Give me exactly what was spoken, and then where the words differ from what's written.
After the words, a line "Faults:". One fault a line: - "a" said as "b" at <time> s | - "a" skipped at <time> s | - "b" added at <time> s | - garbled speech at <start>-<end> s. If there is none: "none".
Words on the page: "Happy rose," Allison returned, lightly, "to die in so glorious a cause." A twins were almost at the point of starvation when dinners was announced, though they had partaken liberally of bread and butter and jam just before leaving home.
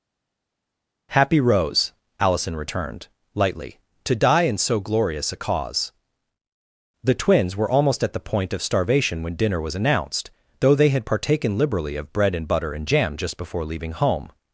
"Happy rose," Allison returned, lightly, "to die in so glorious a cause." The twins were almost at the point of starvation when dinner was announced, though they had partaken liberally of bread and butter and jam just before leaving home.
Faults:
- "A" said as "The" at 7.0 s
- "dinners" said as "dinner" at 9.3 s